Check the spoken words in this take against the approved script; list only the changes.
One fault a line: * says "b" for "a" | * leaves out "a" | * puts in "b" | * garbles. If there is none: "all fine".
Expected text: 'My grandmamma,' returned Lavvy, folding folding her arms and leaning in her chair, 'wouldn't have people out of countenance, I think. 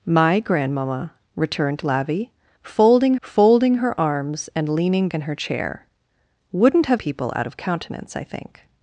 all fine